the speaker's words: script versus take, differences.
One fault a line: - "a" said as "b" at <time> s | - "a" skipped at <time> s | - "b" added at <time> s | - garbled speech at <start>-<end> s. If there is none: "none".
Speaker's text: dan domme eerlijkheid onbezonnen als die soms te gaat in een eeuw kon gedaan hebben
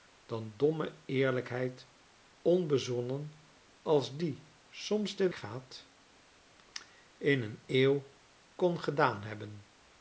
none